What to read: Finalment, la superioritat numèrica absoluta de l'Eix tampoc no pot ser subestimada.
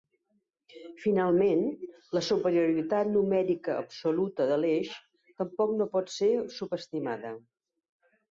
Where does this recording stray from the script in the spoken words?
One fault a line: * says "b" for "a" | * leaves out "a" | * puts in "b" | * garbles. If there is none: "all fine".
all fine